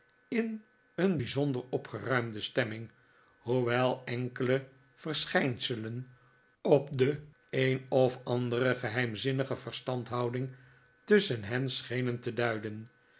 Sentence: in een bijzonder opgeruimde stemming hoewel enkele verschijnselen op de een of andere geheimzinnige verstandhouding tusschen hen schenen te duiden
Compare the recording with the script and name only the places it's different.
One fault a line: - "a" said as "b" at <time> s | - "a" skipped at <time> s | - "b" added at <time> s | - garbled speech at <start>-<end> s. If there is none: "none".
none